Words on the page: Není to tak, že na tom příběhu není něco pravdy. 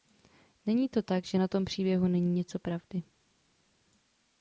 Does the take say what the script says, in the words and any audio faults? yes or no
yes